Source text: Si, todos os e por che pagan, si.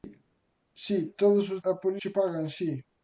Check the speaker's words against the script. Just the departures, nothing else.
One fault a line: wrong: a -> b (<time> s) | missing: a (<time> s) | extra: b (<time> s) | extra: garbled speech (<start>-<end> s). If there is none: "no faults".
no faults